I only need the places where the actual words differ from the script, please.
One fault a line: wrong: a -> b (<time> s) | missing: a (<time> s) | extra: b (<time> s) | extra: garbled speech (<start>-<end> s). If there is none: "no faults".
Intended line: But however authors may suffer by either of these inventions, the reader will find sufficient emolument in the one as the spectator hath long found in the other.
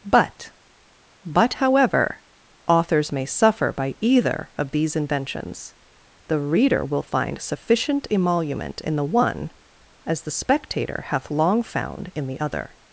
extra: but (1.2 s)